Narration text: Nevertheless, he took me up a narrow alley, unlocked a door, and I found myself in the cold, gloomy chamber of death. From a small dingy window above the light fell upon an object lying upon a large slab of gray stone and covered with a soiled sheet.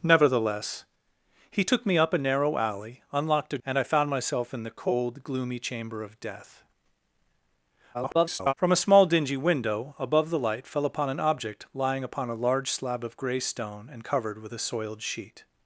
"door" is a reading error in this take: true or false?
true